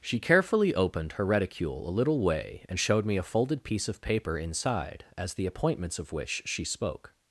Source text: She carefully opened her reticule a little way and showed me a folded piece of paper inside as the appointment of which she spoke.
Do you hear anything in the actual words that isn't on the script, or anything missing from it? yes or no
yes